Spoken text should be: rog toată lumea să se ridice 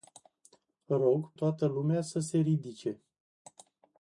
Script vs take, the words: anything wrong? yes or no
no